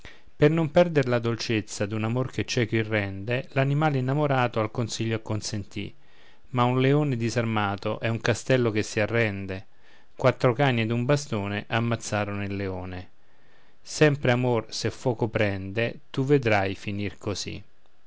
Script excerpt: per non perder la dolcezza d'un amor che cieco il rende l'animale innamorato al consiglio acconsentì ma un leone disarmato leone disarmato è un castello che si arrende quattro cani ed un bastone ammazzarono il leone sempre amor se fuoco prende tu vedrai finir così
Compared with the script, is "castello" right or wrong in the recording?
right